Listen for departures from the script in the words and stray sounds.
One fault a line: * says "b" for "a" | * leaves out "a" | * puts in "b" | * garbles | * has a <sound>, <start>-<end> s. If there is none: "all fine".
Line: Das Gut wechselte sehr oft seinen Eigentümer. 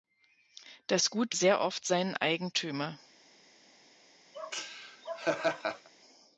* leaves out "wechselte"
* has a laugh, 4.3-5.9 s